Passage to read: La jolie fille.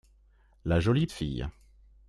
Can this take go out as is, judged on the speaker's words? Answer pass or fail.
pass